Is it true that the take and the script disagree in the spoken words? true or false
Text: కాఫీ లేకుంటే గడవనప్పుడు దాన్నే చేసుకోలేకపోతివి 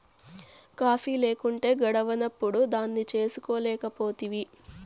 false